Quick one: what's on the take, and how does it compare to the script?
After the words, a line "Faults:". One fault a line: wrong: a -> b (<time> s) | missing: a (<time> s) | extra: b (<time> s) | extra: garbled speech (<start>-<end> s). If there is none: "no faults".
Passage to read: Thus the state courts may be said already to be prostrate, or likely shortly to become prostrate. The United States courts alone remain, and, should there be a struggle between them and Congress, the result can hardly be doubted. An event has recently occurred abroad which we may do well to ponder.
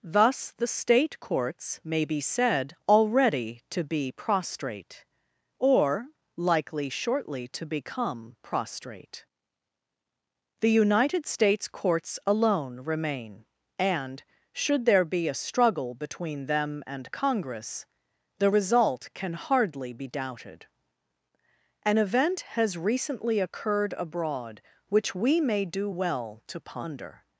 Thus the state courts may be said already to be prostrate, or likely shortly to become prostrate. The United States courts alone remain, and, should there be a struggle between them and Congress, the result can hardly be doubted. An event has recently occurred abroad which we may do well to ponder.
Faults:
no faults